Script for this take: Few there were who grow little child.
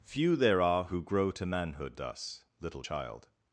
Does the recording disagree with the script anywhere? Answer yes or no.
yes